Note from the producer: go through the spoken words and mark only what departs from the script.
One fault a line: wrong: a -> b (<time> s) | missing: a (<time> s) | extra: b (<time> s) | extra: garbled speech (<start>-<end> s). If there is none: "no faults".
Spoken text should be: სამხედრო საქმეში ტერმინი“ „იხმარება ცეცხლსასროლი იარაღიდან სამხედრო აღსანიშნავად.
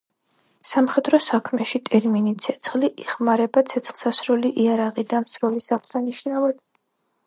extra: ცეცხლი (2.5 s)
wrong: სამხედრო -> სროლის (5.3 s)